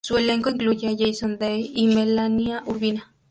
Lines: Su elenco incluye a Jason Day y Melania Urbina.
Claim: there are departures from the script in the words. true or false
false